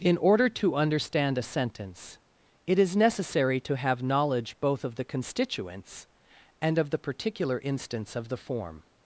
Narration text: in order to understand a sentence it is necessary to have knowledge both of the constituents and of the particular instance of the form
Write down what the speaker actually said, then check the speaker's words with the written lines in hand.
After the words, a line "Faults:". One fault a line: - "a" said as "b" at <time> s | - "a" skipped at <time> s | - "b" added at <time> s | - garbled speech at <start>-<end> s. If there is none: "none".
in order to understand a sentence it is necessary to have knowledge both of the constituents and of the particular instance of the form
Faults:
none